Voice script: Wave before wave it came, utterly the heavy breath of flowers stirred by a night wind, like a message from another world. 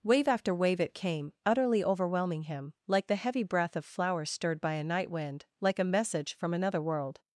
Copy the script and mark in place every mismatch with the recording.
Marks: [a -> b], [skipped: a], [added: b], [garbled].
Wave [before -> after] wave it came, utterly [added: overwhelming him like] the heavy breath of flowers stirred by a night wind, like a message from another world.